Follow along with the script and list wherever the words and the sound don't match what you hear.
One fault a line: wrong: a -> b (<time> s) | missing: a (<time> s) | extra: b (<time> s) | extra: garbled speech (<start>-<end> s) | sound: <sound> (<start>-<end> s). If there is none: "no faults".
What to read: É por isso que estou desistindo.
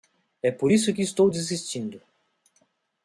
no faults